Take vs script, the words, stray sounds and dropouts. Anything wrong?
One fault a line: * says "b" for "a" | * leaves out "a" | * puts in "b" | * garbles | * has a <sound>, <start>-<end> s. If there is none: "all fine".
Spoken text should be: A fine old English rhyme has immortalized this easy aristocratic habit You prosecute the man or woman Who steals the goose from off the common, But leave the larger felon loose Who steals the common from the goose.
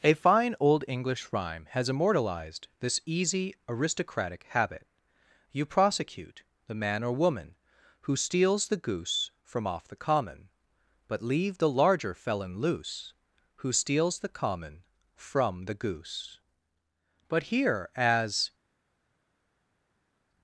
* puts in "But here as"